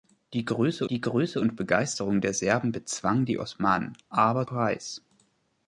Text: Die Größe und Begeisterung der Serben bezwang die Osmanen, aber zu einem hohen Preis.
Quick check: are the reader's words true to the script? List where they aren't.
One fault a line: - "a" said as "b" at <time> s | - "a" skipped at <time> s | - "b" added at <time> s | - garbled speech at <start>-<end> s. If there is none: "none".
- "die Größe" added at 0.9 s
- "zu einem hohen" skipped at 4.5 s